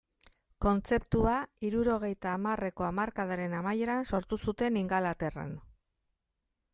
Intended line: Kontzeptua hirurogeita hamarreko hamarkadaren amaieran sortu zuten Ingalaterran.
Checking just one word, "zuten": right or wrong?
right